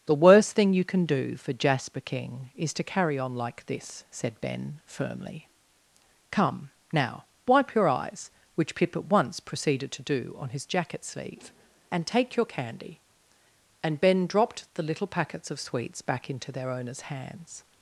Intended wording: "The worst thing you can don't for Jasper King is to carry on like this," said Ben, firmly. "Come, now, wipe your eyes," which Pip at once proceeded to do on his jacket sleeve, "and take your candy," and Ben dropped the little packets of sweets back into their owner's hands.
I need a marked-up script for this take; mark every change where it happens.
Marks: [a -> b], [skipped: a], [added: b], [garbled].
"The worst thing you can [don't -> do] for Jasper King is to carry on like this," said Ben, firmly. "Come, now, wipe your eyes," which Pip at once proceeded to do on his jacket sleeve, "and take your candy," and Ben dropped the little packets of sweets back into their owner's hands.